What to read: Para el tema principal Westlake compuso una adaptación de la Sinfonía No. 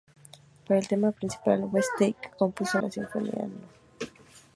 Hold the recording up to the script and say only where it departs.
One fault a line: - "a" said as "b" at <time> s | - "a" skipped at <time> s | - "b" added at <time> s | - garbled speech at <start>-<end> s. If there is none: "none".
- "una adaptación de" skipped at 2.8 s